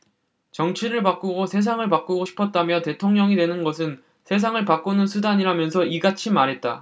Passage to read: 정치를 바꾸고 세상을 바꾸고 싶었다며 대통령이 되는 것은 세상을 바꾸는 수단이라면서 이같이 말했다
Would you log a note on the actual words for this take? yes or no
no